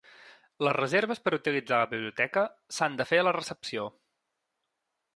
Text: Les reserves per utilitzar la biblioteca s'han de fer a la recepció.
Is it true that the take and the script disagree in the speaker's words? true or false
false